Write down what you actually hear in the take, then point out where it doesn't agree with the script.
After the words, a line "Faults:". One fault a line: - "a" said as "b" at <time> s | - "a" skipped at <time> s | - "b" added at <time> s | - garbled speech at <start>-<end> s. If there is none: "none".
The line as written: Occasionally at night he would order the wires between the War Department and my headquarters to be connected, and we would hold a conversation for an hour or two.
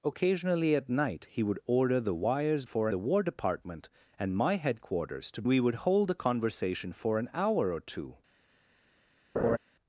Occasionally at night he would order the wires for the War Department and my headquarters to we would hold a conversation for an hour or two.
Faults:
- "between" said as "for" at 2.6 s
- "be connected and" skipped at 5.4 s